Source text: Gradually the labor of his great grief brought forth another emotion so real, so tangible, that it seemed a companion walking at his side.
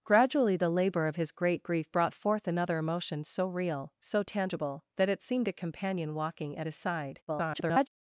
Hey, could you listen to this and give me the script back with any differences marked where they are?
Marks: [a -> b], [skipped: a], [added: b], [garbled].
Gradually the labor of his great grief brought forth another emotion so real, so tangible, that it seemed a companion walking at his side. [garbled]